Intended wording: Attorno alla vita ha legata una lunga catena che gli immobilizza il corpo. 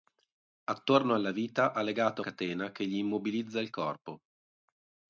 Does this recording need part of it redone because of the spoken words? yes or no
yes